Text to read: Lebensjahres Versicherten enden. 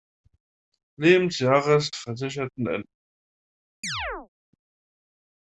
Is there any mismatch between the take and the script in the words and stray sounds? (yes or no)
yes